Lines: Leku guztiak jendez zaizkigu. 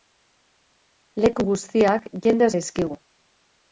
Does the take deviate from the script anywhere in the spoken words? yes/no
no